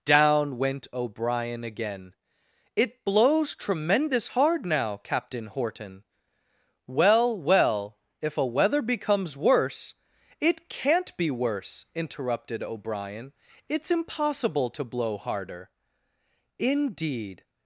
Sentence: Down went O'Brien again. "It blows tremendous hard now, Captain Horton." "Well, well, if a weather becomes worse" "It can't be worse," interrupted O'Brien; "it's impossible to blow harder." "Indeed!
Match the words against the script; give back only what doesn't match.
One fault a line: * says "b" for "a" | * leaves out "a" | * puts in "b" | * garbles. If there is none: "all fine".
all fine